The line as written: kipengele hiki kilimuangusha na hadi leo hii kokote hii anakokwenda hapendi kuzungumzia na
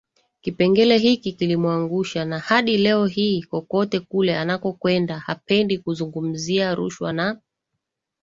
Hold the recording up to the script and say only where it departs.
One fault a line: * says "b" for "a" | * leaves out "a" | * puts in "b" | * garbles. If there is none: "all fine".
* says "kule" for "hii"
* puts in "rushwa"